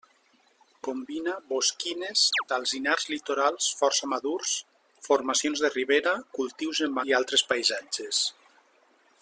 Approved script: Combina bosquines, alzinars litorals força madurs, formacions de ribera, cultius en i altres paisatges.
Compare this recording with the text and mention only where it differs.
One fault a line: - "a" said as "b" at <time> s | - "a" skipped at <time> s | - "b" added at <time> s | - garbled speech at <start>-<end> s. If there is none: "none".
none